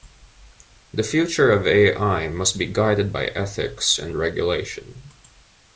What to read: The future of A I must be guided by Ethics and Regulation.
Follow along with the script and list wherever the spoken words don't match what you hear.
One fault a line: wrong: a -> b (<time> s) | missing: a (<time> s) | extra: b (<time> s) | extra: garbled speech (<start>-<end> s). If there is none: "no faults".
no faults